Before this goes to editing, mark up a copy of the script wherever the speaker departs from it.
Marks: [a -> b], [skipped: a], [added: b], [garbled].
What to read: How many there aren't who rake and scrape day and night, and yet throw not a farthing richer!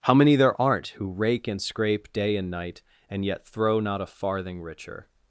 How many there aren't who rake and scrape day and night, and yet throw not a farthing richer!